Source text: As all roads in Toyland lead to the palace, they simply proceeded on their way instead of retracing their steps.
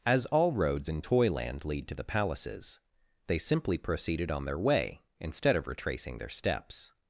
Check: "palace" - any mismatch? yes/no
yes